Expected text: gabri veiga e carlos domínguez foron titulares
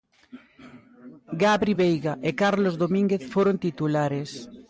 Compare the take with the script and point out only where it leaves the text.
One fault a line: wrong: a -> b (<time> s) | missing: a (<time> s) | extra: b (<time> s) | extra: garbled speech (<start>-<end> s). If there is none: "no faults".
no faults